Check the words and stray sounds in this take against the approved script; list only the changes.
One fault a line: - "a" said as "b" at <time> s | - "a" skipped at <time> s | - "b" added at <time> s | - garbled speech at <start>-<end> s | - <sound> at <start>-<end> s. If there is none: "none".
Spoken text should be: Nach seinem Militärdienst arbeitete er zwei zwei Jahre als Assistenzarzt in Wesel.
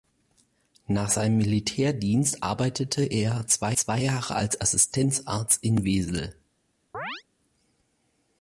- chirp at 6.9-7.2 s